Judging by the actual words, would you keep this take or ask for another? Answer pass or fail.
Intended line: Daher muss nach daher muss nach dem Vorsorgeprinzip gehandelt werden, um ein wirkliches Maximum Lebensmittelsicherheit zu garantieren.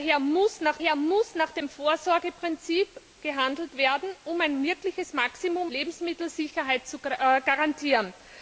pass